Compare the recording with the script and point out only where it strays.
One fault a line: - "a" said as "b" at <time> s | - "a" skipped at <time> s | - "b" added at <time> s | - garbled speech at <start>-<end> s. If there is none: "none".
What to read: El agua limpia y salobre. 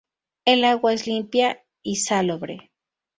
- "es" added at 0.9 s